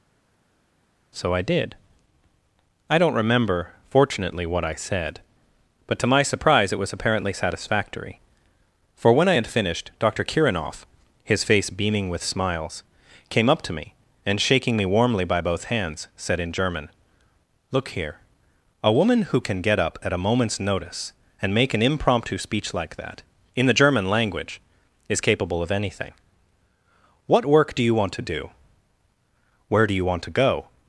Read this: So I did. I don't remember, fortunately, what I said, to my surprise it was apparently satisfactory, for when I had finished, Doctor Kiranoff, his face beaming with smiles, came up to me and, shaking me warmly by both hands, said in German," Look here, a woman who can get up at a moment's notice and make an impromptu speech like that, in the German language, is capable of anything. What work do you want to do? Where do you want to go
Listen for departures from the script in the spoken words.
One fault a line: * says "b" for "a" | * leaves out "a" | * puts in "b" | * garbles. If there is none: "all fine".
* puts in "but"